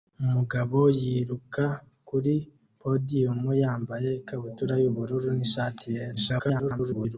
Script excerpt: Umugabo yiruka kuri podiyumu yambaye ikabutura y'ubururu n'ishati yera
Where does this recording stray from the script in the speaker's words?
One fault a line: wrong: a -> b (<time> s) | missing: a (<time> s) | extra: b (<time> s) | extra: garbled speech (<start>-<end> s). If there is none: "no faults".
extra: garbled speech (6.1-7.2 s)